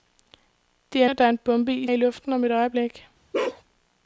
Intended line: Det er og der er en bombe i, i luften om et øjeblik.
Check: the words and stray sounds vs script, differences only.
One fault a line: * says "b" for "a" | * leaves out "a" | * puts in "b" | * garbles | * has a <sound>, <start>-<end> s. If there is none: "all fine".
* has a bark, 3.3-3.6 s